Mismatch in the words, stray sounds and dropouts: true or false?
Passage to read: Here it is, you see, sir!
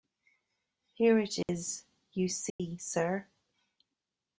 true